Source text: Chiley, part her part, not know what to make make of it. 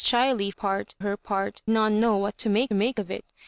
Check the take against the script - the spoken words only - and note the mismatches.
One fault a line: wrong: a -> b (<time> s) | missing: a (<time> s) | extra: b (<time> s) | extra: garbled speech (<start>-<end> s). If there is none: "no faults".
no faults